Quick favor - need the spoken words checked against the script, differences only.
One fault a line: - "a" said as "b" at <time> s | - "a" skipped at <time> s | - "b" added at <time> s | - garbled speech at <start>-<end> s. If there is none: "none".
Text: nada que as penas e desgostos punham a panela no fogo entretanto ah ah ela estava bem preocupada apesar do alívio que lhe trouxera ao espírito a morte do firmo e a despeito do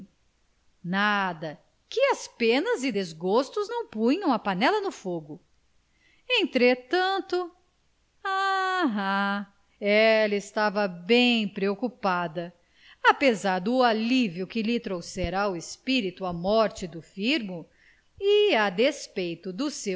- "não" added at 3.7 s